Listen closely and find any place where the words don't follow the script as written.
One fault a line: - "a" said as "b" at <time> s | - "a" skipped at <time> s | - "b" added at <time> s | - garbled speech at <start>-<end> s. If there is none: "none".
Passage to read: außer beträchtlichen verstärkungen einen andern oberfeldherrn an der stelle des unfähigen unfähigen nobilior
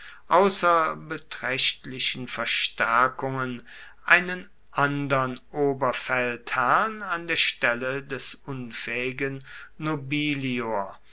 - "unfähigen" skipped at 9.4 s